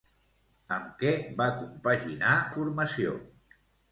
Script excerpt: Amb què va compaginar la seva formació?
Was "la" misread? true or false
true